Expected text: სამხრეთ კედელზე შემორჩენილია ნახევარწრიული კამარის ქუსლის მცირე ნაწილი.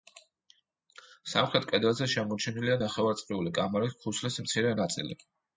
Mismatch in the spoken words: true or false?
false